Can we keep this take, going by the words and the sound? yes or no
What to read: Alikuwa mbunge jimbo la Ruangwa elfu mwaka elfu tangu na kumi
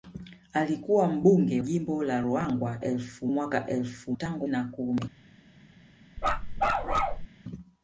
no